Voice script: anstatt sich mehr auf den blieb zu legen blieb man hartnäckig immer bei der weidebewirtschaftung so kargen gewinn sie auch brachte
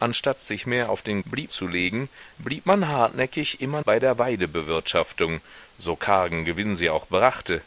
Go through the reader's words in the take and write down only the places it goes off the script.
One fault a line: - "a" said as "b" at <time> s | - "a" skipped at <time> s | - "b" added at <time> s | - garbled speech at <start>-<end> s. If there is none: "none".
none